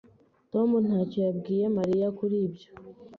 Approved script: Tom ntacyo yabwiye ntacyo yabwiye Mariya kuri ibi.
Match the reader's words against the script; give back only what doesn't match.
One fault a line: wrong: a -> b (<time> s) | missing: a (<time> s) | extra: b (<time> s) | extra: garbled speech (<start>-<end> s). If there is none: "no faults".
missing: ntacyo yabwiye (1.6 s)
wrong: ibi -> ibyo (2.5 s)